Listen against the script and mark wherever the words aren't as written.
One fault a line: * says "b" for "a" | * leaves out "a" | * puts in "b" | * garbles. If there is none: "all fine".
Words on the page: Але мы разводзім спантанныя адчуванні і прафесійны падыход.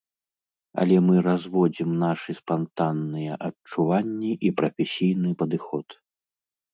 * puts in "нашы"